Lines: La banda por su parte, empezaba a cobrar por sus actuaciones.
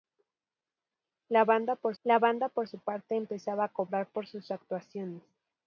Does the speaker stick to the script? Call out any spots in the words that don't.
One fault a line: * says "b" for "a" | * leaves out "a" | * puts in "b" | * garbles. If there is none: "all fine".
* puts in "la banda por"